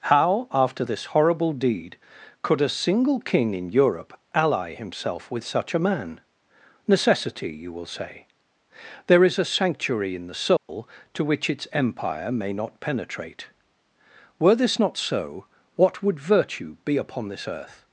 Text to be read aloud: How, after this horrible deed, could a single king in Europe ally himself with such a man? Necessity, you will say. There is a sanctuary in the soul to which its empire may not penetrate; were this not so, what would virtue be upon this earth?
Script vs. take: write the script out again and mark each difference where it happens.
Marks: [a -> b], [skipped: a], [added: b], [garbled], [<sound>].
How, after this horrible deed, could a single king in Europe ally himself with such a man? Necessity, you will say. There is a sanctuary in the soul [dropout] to which its empire may not penetrate; were this not so, what would virtue be upon this earth?